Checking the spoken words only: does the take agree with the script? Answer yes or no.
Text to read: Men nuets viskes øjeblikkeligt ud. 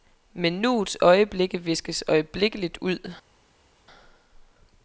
no